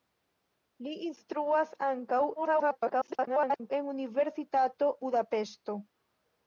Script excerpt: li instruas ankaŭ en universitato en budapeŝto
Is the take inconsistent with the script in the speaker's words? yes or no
yes